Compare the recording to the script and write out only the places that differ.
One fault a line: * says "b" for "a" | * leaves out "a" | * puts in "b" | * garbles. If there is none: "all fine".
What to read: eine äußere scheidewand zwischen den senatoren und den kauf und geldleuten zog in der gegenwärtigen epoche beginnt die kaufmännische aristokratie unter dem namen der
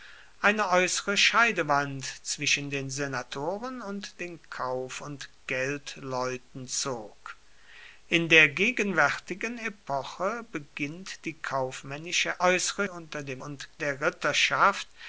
* says "äußere" for "aristokratie"
* says "und" for "namen"